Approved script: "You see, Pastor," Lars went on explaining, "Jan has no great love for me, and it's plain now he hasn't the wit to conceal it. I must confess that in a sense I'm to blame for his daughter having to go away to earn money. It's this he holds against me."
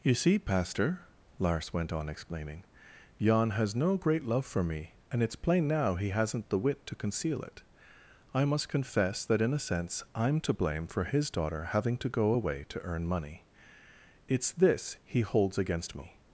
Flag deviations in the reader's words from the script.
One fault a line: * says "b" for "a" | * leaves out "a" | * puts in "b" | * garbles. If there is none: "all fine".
all fine